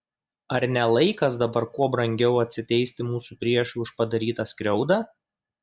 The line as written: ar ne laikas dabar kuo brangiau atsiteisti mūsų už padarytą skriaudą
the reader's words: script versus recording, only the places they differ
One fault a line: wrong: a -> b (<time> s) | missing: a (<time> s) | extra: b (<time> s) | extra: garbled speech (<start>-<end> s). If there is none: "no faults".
extra: priešui (3.5 s)